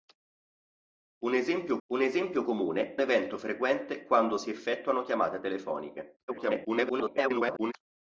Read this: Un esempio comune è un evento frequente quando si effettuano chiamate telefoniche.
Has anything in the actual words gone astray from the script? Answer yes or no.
yes